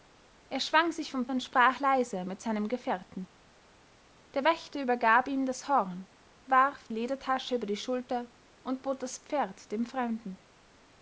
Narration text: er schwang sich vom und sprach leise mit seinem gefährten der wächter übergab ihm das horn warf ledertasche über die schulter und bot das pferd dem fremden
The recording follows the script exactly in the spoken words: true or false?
true